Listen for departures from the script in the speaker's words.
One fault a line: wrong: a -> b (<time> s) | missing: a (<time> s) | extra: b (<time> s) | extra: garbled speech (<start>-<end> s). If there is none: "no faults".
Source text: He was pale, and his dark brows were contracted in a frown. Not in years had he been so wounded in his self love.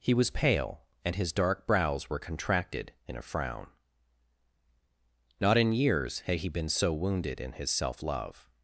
no faults